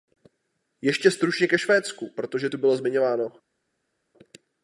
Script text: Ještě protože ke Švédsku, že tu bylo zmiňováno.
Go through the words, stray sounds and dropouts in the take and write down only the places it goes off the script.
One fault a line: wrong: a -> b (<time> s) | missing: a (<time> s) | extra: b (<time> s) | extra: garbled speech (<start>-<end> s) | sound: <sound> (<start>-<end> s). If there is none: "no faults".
wrong: protože -> stručně (1.1 s)
wrong: že -> protože (2.1 s)